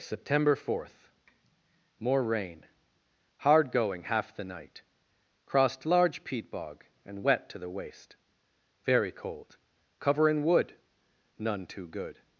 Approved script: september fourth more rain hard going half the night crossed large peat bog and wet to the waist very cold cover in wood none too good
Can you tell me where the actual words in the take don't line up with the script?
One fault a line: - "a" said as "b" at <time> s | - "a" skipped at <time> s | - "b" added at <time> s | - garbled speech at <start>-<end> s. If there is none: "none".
none